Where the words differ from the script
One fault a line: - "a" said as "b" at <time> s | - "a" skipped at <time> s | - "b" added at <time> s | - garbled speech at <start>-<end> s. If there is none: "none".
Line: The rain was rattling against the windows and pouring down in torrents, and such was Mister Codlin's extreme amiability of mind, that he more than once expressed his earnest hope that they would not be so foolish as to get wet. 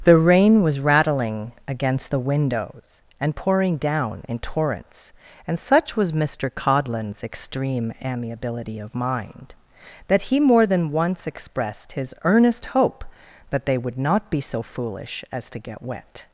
none